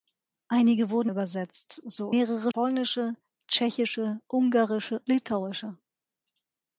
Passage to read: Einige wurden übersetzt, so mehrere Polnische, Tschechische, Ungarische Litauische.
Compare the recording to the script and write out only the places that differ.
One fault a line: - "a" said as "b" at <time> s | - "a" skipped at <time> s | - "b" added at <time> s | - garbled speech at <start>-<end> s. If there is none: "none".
none